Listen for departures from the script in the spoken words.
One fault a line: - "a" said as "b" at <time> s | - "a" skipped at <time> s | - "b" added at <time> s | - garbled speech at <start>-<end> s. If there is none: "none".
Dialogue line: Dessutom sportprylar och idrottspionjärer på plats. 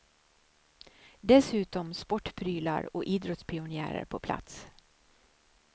none